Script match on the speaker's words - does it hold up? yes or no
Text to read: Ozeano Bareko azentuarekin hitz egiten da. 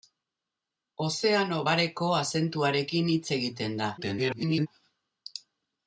no